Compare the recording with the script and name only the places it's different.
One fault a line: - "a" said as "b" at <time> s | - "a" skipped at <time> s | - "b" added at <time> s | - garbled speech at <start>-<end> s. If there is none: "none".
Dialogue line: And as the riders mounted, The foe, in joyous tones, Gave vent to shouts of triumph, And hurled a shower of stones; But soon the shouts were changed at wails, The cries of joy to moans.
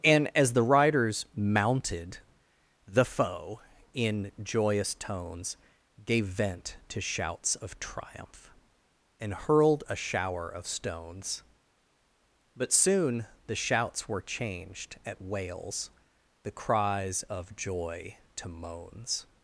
none